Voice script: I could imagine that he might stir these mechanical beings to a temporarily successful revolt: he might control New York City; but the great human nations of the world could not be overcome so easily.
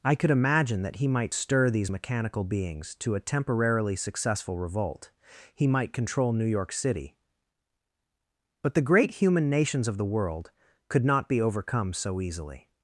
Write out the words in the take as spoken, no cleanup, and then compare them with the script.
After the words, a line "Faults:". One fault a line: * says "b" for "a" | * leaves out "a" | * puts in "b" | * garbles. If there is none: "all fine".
I could imagine that he might stir these mechanical beings to a temporarily successful revolt: he might control New York City; but the great human nations of the world could not be overcome so easily.
Faults:
all fine